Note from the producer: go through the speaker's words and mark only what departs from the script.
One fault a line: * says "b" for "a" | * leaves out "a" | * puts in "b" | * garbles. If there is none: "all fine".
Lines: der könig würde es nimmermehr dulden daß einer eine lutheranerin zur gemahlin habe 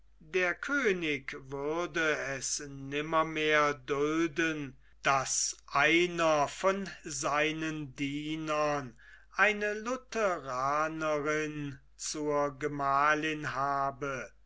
* puts in "von seinen dienern"